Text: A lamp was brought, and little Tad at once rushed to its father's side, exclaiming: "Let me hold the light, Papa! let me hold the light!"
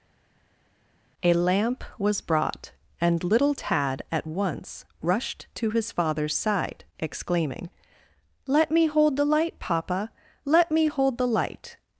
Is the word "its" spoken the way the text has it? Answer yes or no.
no